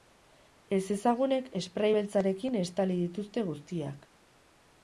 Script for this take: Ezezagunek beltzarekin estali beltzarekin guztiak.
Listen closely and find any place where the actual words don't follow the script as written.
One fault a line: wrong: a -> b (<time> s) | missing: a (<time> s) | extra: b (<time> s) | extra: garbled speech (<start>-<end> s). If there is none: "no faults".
extra: esprai (1.6 s)
wrong: beltzarekin -> dituzte (3.0 s)